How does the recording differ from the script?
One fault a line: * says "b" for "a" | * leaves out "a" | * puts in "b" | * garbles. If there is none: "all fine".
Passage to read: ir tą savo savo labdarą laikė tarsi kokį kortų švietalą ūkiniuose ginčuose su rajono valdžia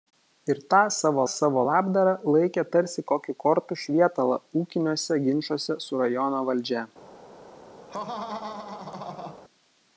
all fine